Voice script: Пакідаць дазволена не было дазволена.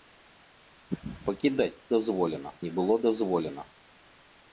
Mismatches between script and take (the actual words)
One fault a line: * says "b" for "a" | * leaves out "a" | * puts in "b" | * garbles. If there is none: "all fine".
all fine